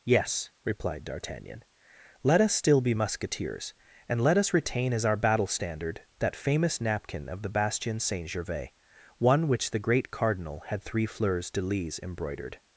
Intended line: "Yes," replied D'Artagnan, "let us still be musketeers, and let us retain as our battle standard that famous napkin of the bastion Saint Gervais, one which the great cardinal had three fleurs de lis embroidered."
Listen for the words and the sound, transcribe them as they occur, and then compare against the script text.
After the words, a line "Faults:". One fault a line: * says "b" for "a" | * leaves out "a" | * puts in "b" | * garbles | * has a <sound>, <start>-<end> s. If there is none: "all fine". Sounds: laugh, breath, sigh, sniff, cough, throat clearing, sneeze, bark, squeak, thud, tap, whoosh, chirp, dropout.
"Yes," replied D'Artagnan, "let us still be musketeers, and let us retain as our battle standard that famous napkin of the bastion Saint Gervais, one which the great cardinal had three fleurs de lis embroidered."
Faults:
all fine